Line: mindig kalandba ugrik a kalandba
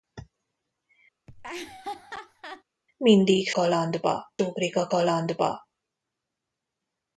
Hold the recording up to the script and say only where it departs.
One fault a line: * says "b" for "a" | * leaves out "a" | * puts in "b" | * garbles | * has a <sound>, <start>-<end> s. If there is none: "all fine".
* has a laugh, 1.3-2.6 s